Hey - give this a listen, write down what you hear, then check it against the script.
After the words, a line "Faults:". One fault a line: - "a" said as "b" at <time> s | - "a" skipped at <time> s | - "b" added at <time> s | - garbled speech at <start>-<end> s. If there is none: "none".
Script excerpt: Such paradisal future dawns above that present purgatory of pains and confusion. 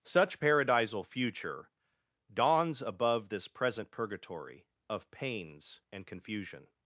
Such paradisal future dawns above this present purgatory of pains and confusion.
Faults:
- "that" said as "this" at 3.3 s